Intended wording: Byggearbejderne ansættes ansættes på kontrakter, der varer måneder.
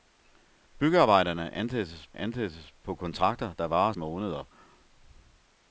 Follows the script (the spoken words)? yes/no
yes